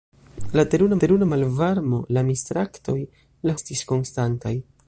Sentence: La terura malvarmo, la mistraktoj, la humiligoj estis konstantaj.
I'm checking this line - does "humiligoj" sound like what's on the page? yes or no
no